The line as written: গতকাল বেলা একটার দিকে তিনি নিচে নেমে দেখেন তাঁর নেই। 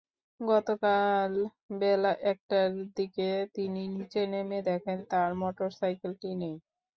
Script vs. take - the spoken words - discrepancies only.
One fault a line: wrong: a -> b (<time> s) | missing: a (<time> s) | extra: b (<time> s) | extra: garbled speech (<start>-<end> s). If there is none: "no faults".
extra: মোটরসাইকেলটি (5.4 s)